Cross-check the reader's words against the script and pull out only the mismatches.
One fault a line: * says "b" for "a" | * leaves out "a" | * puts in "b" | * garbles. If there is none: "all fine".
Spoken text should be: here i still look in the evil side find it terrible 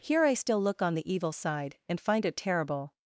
* says "on" for "in"
* puts in "and"